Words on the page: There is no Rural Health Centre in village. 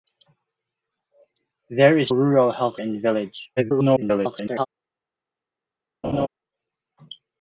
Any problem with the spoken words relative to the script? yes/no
yes